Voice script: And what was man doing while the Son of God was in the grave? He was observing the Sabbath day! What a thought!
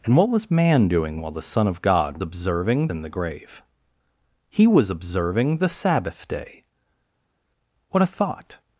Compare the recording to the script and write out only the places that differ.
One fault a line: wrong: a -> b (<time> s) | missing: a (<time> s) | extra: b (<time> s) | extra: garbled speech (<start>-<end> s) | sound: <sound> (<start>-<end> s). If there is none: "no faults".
wrong: was -> observing (2.2 s)